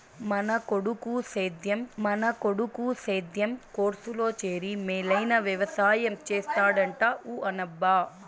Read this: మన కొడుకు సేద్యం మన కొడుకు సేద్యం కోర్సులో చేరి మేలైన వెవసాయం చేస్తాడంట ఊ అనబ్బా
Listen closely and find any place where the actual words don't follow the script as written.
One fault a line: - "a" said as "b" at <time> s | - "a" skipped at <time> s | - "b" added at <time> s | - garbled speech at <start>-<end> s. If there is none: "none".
none